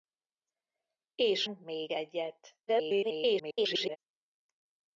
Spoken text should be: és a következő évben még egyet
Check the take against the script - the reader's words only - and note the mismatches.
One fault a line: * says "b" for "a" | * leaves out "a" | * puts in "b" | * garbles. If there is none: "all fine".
* leaves out "a következő évben"
* garbles